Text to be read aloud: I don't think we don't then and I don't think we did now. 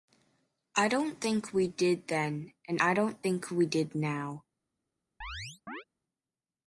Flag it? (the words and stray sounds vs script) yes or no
yes